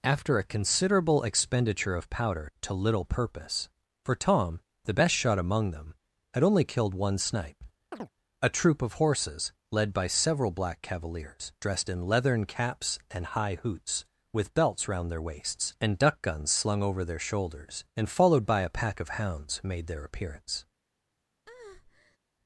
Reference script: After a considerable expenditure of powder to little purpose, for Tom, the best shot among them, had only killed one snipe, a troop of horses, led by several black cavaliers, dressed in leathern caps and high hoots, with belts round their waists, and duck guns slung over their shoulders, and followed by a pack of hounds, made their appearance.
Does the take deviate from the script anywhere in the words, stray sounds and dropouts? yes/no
yes